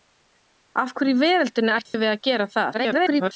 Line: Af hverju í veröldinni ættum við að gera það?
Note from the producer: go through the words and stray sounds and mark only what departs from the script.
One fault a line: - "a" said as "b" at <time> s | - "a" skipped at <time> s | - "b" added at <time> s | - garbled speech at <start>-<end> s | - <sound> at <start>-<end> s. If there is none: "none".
- dropout at 1.9-1.9 s
- garbled speech at 2.7-3.3 s